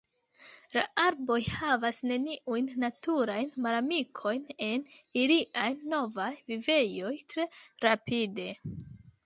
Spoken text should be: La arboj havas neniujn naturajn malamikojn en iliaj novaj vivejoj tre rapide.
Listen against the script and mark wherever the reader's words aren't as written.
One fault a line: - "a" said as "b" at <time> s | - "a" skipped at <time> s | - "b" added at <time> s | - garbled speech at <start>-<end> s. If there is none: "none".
none